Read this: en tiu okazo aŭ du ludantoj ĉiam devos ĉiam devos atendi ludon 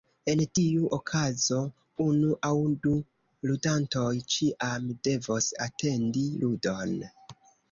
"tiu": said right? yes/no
yes